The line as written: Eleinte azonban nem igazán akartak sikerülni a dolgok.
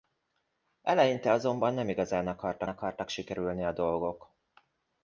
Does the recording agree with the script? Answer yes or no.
no